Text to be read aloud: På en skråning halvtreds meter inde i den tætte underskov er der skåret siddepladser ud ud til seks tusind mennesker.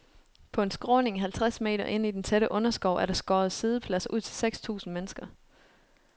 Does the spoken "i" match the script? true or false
true